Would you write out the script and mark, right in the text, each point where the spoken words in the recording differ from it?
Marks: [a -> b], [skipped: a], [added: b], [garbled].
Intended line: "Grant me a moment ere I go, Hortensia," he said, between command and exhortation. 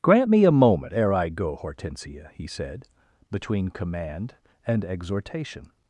"Grant me a moment ere I go, Hortensia," he said, between command and exhortation.